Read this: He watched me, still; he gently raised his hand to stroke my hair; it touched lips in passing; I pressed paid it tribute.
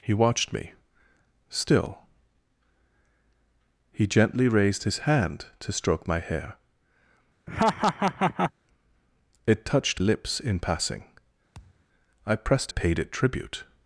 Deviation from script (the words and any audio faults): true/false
true